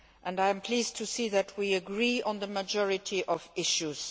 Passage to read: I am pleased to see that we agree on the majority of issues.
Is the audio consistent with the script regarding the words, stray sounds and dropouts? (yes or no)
yes